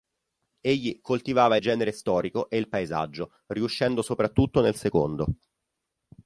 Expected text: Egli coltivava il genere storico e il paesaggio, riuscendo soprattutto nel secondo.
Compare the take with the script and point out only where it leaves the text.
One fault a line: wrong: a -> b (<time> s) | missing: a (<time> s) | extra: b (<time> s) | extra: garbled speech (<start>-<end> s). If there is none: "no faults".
no faults